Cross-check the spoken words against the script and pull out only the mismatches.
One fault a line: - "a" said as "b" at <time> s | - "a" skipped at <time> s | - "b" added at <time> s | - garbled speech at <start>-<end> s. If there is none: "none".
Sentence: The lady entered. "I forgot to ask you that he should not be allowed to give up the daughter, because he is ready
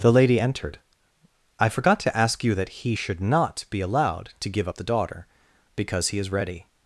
none